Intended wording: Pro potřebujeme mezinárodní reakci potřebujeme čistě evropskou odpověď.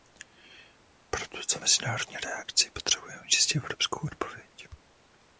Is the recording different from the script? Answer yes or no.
yes